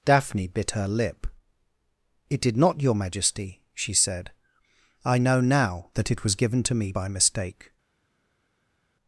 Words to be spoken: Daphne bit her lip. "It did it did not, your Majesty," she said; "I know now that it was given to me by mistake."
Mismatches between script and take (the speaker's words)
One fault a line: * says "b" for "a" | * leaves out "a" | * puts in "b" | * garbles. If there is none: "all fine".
* leaves out "it did"